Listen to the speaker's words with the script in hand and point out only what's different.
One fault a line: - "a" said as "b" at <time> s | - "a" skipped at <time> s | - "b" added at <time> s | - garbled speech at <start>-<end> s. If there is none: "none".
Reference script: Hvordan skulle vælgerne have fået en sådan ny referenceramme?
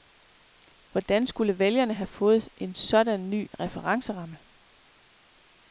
none